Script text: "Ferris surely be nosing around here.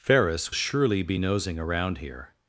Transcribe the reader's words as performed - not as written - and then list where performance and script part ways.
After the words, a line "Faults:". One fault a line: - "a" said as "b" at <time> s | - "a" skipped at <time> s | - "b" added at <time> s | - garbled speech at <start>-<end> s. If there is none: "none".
"Ferris surely be nosing around here.
Faults:
none